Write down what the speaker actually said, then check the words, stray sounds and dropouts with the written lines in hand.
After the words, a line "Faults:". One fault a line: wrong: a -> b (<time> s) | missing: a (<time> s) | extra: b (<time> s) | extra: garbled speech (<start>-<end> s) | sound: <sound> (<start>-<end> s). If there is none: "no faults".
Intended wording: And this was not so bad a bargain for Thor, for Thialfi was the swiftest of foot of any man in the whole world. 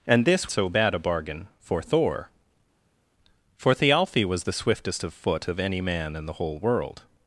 And this so bad a bargain for Thor, for Thialfi was the swiftest of foot of any man in the whole world.
Faults:
missing: was not (0.5 s)